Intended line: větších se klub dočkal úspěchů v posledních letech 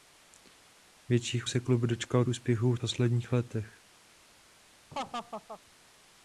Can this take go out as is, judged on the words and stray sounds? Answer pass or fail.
fail